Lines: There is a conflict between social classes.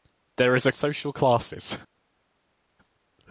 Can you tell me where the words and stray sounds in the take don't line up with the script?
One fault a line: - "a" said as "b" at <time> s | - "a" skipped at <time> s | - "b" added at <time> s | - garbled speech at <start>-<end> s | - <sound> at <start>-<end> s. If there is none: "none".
- "conflict between" skipped at 0.7 s